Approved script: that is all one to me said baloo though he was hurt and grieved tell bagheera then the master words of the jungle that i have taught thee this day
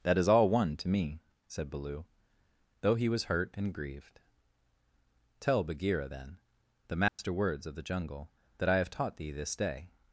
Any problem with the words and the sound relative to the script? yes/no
yes